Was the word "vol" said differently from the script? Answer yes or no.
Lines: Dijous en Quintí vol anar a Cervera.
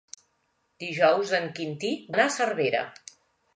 yes